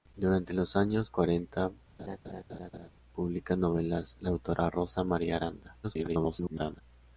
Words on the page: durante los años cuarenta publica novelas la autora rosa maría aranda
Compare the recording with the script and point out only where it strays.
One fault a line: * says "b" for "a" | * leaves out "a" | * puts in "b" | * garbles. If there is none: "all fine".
* garbles